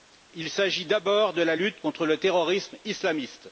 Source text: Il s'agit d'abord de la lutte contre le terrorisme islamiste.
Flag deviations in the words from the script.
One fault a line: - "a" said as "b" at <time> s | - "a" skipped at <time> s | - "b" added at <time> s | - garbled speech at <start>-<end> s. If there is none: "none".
none